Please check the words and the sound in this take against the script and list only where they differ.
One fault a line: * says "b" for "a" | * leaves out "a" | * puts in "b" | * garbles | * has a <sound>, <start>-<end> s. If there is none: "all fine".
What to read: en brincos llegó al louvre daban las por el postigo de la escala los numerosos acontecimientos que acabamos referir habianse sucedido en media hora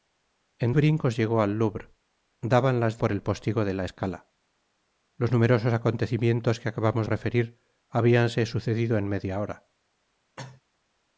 * has a cough, 10.4-10.6 s